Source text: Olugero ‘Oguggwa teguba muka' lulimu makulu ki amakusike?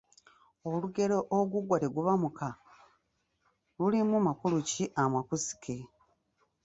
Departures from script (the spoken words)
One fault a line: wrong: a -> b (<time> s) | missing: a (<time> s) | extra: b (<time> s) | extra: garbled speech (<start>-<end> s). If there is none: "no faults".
no faults